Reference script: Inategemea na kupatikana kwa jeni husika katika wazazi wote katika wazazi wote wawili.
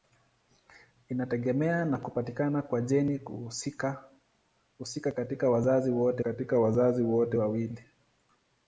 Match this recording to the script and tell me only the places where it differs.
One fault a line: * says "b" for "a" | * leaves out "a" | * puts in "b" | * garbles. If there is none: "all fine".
all fine